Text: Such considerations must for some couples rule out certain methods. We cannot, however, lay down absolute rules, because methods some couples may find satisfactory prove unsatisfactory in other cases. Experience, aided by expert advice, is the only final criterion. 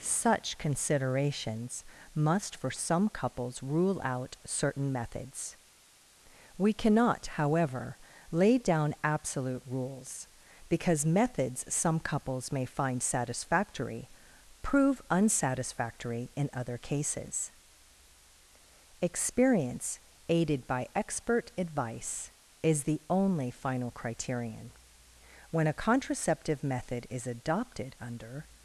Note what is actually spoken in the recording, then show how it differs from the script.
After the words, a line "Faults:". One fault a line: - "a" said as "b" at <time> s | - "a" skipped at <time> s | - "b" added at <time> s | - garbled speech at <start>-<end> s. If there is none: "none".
Such considerations must for some couples rule out certain methods. We cannot, however, lay down absolute rules, because methods some couples may find satisfactory prove unsatisfactory in other cases. Experience, aided by expert advice, is the only final criterion. "When a contraceptive method is adopted under
Faults:
- "When a contraceptive method is adopted under" added at 25.5 s